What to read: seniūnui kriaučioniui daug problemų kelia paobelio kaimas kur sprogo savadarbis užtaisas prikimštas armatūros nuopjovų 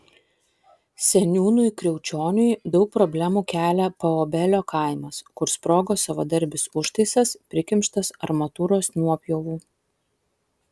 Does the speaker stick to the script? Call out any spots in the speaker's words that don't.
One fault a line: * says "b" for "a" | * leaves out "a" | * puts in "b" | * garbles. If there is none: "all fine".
all fine